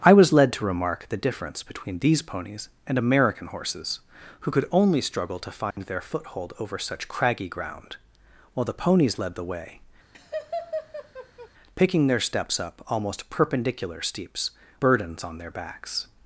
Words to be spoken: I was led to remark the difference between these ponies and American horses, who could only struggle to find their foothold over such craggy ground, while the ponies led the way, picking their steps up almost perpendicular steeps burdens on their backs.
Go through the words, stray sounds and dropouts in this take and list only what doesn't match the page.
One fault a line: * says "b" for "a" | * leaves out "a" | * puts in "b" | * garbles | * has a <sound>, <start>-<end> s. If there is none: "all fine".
* has a dropout, 5.7-5.8 s
* has a laugh, 10.1-11.5 s